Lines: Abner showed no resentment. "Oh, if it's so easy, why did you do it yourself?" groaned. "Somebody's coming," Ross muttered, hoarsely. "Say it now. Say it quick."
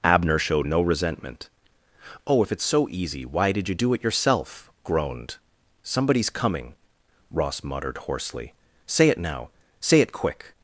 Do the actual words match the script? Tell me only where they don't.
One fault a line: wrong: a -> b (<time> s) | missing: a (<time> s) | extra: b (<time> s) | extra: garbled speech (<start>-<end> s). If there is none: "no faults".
no faults